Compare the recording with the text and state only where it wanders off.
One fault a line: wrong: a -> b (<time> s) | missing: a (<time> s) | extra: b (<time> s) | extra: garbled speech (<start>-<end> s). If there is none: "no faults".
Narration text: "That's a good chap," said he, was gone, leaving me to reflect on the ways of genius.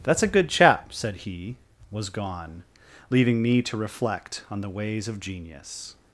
no faults